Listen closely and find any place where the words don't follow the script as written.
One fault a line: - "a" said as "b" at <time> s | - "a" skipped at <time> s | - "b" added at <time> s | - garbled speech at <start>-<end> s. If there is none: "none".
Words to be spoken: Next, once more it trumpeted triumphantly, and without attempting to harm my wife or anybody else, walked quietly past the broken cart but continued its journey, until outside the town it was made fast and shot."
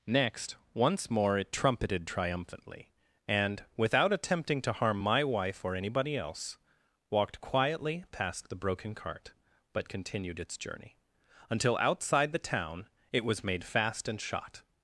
none